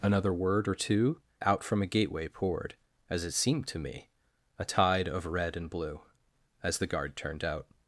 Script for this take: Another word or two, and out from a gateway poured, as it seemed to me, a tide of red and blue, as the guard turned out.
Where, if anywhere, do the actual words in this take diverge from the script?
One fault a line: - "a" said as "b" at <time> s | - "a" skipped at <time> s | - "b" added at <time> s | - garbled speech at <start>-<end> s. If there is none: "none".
- "and" skipped at 1.2 s